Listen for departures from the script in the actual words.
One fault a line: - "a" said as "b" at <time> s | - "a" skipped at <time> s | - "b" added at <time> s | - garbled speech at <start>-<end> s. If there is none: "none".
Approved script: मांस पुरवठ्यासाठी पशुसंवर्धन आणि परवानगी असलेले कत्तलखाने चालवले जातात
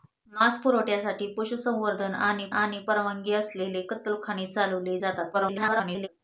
- "आणि" added at 2.5 s
- garbled speech at 5.3-6.1 s